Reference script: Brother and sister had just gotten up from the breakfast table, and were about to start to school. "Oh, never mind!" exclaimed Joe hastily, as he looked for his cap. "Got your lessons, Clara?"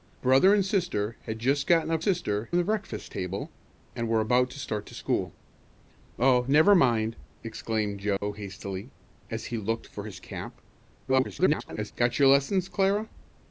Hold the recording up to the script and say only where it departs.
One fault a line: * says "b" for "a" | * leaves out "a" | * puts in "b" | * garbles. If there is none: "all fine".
* says "sister" for "from"
* garbles